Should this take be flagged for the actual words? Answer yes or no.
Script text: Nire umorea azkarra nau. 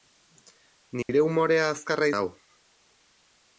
no